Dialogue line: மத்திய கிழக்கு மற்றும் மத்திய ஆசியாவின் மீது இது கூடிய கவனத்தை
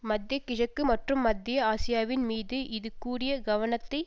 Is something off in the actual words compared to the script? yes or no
no